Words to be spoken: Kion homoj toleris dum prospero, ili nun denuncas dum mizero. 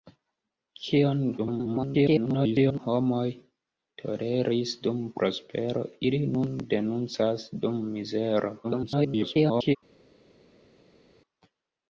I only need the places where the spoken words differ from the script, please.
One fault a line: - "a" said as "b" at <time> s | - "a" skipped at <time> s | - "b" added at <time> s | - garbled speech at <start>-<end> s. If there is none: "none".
- garbled speech at 1.4-2.8 s
- garbled speech at 8.6-9.8 s